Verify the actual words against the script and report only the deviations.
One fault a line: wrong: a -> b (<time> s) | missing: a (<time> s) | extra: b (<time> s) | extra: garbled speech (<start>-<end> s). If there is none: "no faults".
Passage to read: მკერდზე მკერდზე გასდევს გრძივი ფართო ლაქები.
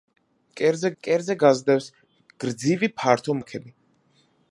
no faults